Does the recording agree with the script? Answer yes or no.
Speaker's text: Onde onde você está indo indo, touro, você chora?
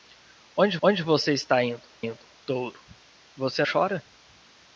yes